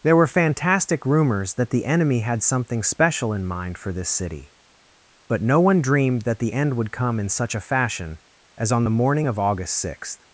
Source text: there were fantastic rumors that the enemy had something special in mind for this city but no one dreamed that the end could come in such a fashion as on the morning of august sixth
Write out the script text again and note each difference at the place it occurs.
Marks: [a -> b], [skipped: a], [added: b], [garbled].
there were fantastic rumors that the enemy had something special in mind for this city but no one dreamed that the end [could -> would] come in such a fashion as on the morning of august sixth